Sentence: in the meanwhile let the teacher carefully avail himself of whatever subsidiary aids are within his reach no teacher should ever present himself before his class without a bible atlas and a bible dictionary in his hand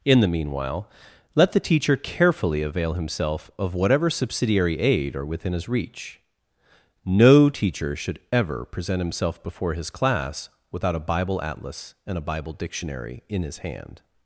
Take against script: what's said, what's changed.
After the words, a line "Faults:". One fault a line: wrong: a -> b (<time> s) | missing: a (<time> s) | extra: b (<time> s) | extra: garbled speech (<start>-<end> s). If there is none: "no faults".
in the meanwhile let the teacher carefully avail himself of whatever subsidiary aid are within his reach no teacher should ever present himself before his class without a bible atlas and a bible dictionary in his hand
Faults:
wrong: aids -> aid (4.8 s)